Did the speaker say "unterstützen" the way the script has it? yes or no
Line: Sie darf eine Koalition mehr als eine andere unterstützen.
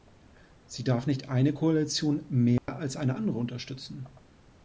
yes